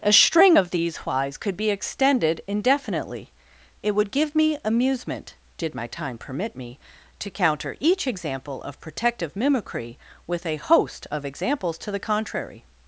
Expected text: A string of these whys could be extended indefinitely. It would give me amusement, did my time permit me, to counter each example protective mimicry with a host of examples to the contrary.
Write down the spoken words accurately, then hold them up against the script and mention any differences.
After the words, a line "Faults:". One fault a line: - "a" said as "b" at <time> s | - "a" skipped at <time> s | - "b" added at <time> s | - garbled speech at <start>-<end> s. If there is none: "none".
A string of these whys could be extended indefinitely. It would give me amusement, did my time permit me, to counter each example of protective mimicry with a host of examples to the contrary.
Faults:
- "of" added at 8.6 s